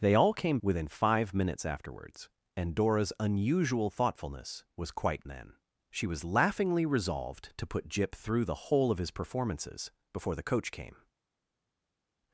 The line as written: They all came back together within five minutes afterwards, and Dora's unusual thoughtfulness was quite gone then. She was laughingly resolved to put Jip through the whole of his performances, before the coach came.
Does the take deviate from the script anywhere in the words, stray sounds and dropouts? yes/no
yes